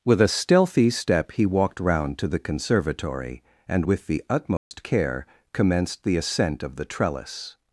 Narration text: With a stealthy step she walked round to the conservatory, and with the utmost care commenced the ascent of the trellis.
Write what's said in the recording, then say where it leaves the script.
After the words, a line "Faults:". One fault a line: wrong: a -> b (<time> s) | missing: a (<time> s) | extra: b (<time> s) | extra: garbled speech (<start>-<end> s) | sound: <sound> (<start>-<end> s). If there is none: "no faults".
With a stealthy step he walked round to the conservatory, and with the utmost care commenced the ascent of the trellis.
Faults:
wrong: she -> he (1.3 s)
sound: dropout (4.6-4.7 s)